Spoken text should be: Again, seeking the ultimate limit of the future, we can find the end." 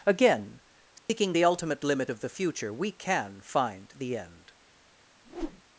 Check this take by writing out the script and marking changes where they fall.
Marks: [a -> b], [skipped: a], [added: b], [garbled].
Again, seeking the ultimate limit of the future, we can find the end."